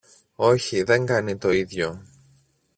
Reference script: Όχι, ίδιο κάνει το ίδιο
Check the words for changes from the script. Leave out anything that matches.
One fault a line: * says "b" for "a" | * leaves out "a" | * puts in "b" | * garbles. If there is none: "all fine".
* says "δεν" for "ίδιο"